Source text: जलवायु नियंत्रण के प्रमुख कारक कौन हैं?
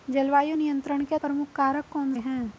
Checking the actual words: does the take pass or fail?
pass